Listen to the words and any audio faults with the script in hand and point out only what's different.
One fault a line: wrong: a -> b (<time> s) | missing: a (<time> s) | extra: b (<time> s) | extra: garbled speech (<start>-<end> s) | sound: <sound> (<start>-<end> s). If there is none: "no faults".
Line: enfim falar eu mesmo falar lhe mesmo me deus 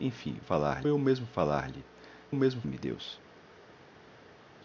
no faults